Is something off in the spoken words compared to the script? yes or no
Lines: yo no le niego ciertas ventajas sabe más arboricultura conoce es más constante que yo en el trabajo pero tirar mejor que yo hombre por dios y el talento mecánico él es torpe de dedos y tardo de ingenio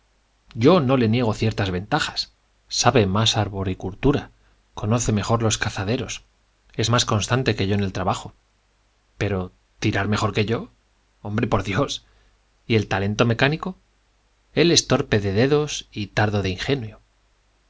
yes